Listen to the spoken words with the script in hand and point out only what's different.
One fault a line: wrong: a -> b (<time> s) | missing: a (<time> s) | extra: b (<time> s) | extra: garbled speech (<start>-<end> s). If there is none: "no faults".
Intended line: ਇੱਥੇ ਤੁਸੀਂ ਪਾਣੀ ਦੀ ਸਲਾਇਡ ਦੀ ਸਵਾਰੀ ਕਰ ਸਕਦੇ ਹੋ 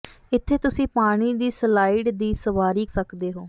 missing: ਕਰ (2.9 s)